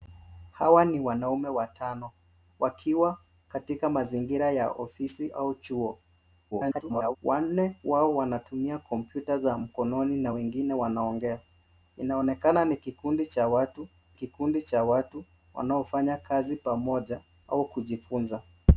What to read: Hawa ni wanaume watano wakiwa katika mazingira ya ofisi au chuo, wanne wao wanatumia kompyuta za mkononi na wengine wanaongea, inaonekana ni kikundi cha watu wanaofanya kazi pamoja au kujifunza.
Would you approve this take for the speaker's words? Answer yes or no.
no